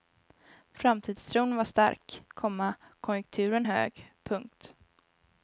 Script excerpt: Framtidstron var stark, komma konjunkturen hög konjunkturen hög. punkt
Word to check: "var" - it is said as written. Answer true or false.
true